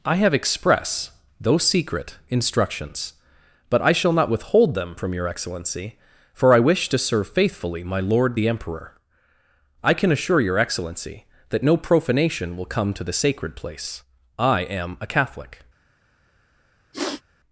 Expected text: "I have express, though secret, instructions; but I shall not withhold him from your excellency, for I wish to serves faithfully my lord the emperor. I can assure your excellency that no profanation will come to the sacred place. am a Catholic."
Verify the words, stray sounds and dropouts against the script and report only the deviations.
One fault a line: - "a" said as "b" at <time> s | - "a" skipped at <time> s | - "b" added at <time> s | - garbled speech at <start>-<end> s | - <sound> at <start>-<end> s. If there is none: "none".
- "him" said as "them" at 4.7 s
- "serves" said as "serve" at 7.0 s
- "I" added at 14.4 s
- sniff at 16.9-17.2 s